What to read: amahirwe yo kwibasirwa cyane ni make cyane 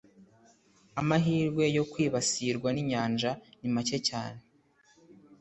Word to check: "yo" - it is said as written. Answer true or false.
true